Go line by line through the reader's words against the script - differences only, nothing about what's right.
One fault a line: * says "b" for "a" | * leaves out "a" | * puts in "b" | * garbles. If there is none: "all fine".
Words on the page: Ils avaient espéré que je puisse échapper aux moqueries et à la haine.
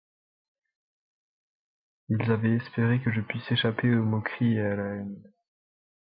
all fine